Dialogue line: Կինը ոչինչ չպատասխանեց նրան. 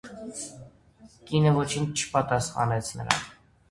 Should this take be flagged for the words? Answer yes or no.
no